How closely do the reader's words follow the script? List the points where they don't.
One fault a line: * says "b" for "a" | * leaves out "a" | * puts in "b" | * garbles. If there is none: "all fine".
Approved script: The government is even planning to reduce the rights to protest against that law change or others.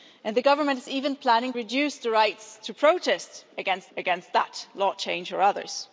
* leaves out "to"
* puts in "against"